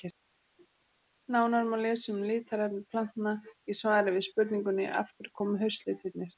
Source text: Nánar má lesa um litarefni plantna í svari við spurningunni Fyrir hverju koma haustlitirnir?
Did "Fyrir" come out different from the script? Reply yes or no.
yes